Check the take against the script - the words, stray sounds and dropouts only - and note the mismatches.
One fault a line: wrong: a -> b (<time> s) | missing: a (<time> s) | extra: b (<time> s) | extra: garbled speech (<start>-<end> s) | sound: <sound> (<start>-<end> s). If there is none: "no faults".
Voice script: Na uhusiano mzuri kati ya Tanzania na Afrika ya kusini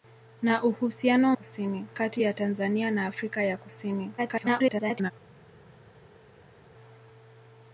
wrong: mzuri -> kusini (1.3 s)
extra: garbled speech (4.2-5.1 s)